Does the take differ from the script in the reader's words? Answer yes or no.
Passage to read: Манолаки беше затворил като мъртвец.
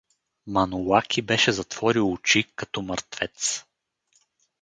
yes